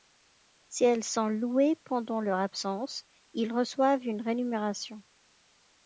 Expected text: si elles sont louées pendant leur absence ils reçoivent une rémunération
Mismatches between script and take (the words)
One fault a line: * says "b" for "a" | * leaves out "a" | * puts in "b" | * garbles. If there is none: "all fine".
all fine